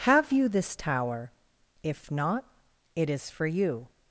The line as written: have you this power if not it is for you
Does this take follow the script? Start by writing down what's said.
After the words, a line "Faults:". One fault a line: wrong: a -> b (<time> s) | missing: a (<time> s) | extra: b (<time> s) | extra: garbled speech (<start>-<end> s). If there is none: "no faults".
have you this tower if not it is for you
Faults:
wrong: power -> tower (0.8 s)